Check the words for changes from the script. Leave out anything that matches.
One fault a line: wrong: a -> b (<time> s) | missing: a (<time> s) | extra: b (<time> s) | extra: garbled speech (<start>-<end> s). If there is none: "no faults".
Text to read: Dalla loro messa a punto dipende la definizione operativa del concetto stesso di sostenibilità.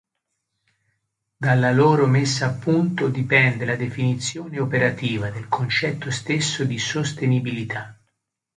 no faults